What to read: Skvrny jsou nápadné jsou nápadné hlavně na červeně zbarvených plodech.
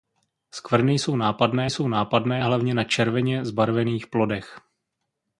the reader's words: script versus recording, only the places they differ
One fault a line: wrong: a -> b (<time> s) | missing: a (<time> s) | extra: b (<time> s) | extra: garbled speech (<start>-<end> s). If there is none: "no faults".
no faults